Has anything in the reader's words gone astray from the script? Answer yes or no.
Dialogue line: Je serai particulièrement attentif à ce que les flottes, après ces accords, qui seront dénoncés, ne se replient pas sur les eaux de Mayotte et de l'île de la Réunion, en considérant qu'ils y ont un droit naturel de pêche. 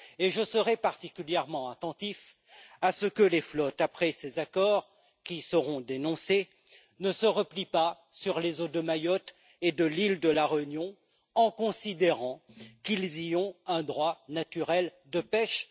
no